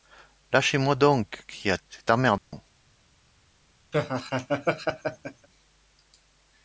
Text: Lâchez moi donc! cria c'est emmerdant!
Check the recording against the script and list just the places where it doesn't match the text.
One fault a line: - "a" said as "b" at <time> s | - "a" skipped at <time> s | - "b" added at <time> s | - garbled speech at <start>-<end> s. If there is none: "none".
none